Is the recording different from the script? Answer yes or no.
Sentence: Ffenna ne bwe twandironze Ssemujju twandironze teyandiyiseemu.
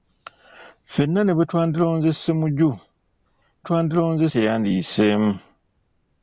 no